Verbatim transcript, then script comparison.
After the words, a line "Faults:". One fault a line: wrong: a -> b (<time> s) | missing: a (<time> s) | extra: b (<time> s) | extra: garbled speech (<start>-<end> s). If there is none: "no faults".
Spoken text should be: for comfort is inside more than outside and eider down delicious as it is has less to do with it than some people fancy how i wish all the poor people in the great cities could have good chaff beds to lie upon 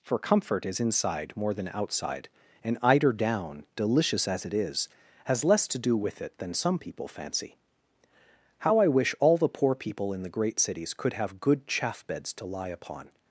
for comfort is inside more than outside and eider down delicious as it is has less to do with it than some people fancy how i wish all the poor people in the great cities could have good chaff beds to lie upon
Faults:
no faults